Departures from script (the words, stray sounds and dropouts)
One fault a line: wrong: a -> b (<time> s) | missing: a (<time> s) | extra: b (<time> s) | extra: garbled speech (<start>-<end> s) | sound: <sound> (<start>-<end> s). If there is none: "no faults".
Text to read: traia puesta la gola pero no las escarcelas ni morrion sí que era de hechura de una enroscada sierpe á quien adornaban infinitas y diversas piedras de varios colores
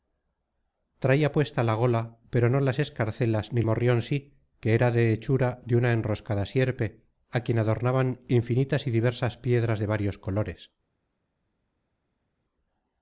no faults